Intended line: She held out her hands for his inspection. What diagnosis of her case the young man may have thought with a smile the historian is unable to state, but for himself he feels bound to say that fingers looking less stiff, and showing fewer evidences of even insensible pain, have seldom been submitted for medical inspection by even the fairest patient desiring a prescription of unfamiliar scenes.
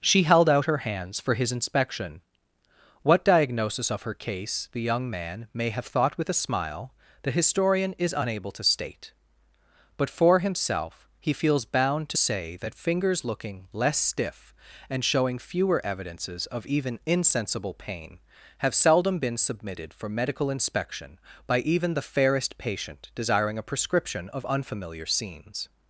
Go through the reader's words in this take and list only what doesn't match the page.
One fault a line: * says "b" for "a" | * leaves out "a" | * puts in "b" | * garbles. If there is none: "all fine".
all fine